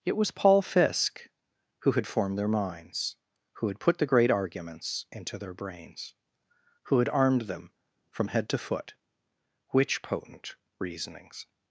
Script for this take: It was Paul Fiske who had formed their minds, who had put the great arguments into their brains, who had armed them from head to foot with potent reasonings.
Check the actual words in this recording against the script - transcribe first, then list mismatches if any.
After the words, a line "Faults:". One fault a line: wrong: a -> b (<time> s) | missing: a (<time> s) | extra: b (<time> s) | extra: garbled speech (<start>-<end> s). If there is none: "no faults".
It was Paul Fiske who had formed their minds, who had put the great arguments into their brains, who had armed them from head to foot which potent reasonings.
Faults:
wrong: with -> which (9.7 s)